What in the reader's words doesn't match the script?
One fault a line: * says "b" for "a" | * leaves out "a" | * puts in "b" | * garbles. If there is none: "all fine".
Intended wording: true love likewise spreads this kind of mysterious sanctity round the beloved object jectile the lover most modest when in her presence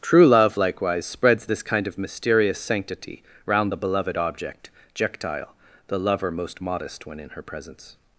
all fine